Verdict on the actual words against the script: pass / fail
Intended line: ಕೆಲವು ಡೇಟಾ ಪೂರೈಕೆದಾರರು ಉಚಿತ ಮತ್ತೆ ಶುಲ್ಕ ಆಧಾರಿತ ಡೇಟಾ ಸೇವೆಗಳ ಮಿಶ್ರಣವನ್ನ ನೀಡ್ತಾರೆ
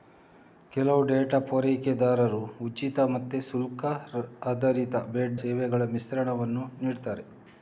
fail